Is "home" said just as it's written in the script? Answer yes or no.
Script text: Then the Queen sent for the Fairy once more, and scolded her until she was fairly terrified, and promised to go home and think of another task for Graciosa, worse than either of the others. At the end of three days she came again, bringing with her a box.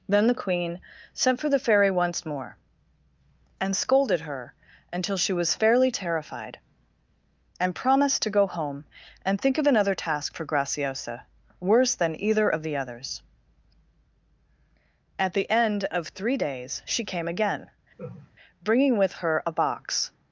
yes